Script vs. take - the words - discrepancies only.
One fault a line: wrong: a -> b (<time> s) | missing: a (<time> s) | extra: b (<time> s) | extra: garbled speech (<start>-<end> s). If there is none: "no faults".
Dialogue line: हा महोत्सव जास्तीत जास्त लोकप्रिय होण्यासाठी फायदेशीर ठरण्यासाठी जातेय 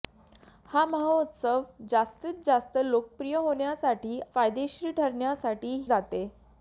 no faults